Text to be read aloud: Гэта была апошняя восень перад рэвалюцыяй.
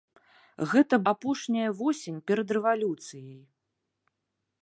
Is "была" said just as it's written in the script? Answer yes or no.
no